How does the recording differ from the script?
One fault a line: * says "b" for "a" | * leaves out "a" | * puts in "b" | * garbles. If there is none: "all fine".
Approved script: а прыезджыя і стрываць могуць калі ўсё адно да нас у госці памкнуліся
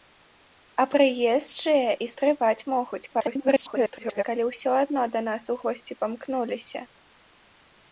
* garbles